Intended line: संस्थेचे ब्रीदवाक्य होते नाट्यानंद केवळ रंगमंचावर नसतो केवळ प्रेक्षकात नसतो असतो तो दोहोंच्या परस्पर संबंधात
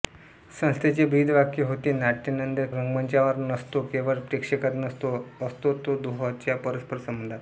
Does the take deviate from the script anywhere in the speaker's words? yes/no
yes